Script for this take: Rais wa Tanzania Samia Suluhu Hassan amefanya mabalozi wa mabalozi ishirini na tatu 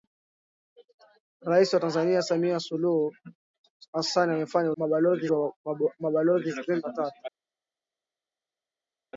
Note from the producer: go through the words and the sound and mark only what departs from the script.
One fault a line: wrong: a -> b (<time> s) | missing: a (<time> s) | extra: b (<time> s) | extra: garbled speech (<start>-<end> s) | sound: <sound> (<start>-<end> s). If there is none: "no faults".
no faults